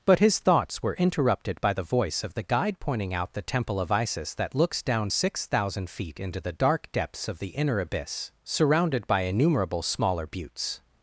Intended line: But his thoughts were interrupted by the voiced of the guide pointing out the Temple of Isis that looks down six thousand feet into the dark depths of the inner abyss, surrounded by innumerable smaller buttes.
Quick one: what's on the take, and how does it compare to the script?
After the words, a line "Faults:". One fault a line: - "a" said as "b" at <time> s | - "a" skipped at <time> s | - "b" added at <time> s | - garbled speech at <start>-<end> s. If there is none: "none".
But his thoughts were interrupted by the voice of the guide pointing out the Temple of Isis that looks down six thousand feet into the dark depths of the inner abyss, surrounded by innumerable smaller buttes.
Faults:
- "voiced" said as "voice" at 1.8 s